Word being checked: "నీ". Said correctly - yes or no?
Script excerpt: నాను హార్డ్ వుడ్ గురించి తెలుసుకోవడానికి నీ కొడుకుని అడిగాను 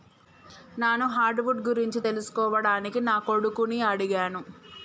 no